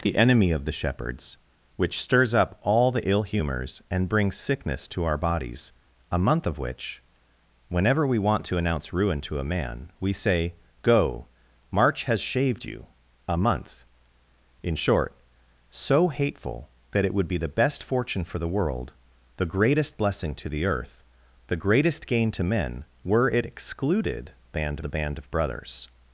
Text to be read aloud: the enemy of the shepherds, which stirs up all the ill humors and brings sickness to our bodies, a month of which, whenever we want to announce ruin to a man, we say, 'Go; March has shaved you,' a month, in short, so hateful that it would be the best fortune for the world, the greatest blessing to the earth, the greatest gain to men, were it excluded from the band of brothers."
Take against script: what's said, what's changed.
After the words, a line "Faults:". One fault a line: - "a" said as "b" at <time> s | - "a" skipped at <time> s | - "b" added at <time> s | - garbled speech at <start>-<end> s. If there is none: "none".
the enemy of the shepherds, which stirs up all the ill humors and brings sickness to our bodies, a month of which, whenever we want to announce ruin to a man, we say, 'Go; March has shaved you,' a month, in short, so hateful that it would be the best fortune for the world, the greatest blessing to the earth, the greatest gain to men, were it excluded band the band of brothers."
Faults:
- "from" said as "band" at 24.5 s